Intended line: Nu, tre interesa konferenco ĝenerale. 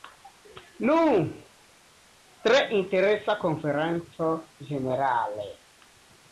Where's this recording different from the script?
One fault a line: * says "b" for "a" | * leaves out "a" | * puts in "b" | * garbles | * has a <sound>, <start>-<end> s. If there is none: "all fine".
all fine